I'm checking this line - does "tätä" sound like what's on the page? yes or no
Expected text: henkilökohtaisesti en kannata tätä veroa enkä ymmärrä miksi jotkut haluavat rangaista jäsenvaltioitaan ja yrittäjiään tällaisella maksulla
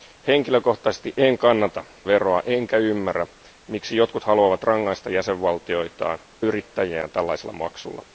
no